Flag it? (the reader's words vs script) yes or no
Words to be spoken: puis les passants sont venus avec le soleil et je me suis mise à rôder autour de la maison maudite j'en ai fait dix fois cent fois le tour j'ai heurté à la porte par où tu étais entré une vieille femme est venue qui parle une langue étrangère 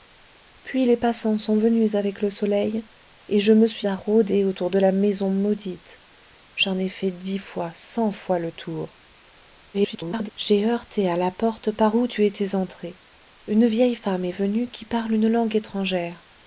yes